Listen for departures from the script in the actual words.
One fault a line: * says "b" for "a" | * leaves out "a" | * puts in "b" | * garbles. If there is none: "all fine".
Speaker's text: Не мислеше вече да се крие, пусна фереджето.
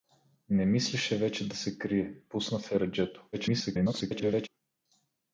* garbles